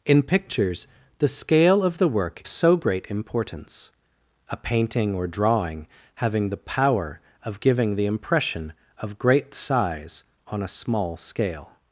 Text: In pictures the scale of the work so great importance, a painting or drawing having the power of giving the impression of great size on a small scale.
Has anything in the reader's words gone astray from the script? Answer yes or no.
no